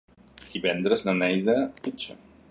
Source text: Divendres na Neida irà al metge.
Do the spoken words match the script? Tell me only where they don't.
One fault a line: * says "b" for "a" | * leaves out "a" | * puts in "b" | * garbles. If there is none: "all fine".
* leaves out "irà al"